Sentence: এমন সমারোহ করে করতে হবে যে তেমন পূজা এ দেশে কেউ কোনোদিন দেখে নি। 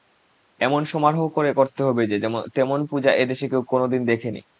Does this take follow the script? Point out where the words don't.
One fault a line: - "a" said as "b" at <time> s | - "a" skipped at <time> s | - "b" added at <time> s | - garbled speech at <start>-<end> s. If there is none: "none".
none